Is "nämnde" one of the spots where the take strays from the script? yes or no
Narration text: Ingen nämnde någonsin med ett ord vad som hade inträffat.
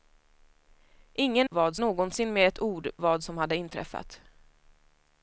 yes